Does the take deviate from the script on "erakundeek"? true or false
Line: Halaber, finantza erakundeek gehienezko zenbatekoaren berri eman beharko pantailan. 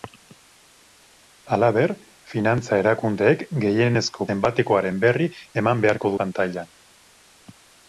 false